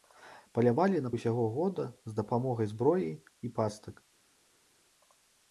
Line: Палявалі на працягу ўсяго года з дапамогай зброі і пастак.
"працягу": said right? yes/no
no